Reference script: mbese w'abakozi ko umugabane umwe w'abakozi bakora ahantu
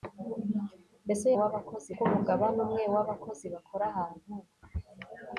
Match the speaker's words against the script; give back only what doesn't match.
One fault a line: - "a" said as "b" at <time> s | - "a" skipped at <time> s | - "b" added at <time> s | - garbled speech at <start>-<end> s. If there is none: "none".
none